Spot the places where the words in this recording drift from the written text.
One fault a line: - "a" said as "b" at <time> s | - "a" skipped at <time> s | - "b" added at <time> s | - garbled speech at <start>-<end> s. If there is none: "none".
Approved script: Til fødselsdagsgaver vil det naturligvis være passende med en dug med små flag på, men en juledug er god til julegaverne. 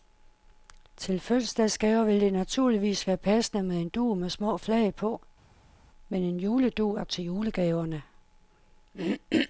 - "god" skipped at 7.0 s